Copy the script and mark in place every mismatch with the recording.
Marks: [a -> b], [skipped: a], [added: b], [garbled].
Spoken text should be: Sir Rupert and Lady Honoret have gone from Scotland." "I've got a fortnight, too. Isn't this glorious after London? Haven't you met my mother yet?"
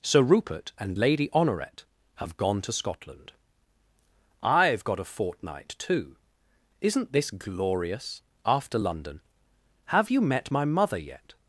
Sir Rupert and Lady Honoret have gone [from -> to] Scotland." "I've got a fortnight, too. Isn't this glorious after London? [Haven't -> Have] you met my mother yet?"